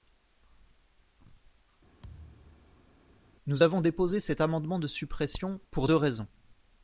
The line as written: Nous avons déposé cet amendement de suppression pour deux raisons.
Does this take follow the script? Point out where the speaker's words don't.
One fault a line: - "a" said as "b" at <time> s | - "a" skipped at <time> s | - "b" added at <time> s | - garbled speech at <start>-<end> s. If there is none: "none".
none